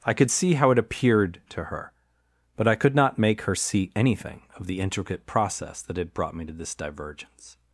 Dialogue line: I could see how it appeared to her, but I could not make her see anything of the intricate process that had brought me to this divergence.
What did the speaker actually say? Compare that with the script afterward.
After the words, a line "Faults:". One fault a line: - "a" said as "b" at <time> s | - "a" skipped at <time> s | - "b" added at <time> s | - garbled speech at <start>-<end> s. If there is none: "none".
I could see how it appeared to her, but I could not make her see anything of the intricate process that had brought me to this divergence.
Faults:
none